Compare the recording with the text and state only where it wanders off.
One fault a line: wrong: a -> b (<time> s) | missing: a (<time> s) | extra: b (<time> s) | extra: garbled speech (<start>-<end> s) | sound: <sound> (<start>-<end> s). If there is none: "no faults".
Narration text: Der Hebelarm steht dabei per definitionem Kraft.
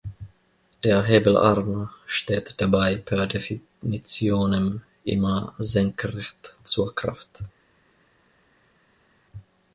extra: immer senkrecht zur (5.0 s)